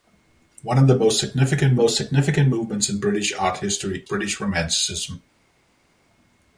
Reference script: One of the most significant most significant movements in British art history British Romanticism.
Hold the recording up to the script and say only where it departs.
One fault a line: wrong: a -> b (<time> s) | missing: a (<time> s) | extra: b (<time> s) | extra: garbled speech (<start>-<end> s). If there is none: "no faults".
no faults